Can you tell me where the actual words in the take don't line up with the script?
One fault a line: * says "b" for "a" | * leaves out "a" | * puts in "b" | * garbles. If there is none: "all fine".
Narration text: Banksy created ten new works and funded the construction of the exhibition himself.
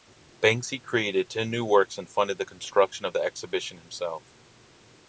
all fine